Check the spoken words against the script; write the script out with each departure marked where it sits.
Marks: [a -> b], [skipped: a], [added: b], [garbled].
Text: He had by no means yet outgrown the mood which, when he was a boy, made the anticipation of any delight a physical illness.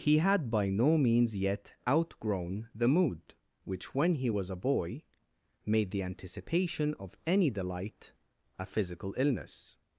He had by no means yet outgrown the mood which, when he was a boy, made the anticipation of any delight a physical illness.